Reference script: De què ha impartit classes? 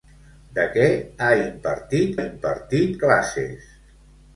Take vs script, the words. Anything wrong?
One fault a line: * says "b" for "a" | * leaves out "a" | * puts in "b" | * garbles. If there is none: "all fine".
* puts in "impartit"